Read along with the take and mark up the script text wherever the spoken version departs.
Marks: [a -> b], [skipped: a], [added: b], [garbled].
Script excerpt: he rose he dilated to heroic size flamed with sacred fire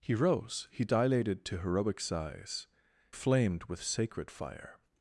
he rose he dilated to heroic size flamed with sacred fire